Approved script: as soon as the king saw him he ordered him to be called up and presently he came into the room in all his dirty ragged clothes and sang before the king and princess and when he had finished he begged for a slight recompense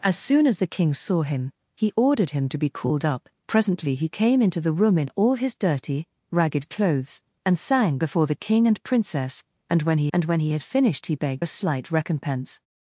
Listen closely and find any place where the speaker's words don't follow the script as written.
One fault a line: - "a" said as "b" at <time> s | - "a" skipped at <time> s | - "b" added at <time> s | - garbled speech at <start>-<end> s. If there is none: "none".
- "and" skipped at 3.3 s
- "and when he" added at 10.1 s
- "for" skipped at 11.4 s